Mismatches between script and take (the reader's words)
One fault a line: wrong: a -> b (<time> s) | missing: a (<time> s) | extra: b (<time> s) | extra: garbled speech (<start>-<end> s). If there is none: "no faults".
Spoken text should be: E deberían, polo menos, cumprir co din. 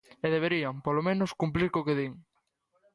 extra: que (1.9 s)